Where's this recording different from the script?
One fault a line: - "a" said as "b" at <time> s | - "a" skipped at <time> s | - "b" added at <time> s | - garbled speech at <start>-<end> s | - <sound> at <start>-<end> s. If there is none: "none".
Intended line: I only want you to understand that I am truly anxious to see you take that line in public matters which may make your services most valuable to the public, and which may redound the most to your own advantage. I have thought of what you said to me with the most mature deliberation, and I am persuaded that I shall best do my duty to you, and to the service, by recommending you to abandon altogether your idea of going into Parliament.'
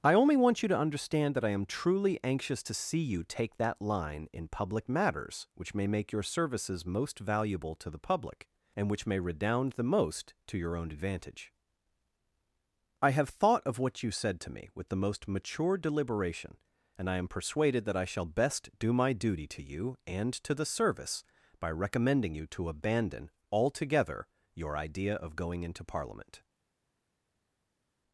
none